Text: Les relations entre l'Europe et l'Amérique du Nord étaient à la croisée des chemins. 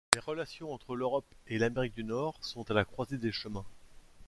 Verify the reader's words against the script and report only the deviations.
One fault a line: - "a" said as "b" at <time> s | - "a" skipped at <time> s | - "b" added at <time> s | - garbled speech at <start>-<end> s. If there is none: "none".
- "étaient" said as "sont" at 2.4 s